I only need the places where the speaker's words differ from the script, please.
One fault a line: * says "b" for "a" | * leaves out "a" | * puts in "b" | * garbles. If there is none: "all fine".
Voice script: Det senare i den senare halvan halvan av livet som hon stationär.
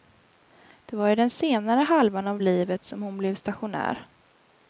* says "var" for "senare"
* leaves out "halvan"
* puts in "blev"